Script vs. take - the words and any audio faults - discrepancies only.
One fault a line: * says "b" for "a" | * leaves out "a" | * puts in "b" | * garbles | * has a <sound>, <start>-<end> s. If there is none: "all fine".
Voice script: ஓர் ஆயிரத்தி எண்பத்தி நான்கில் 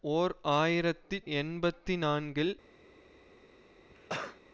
* has a cough, 3.9-4.4 s